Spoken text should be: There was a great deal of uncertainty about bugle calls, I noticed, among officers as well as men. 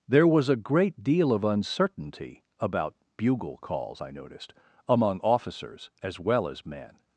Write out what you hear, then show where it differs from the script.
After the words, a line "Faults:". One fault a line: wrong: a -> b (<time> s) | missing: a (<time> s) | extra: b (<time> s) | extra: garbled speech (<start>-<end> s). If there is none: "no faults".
There was a great deal of uncertainty about bugle calls, I noticed, among officers as well as men.
Faults:
no faults